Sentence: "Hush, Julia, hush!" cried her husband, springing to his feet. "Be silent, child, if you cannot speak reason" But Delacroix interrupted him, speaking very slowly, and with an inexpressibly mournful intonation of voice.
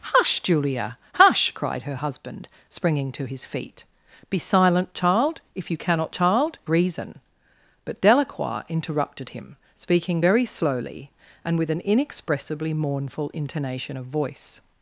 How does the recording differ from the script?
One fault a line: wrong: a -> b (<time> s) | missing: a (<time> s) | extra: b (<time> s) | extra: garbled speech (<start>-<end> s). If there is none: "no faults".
wrong: speak -> child (6.1 s)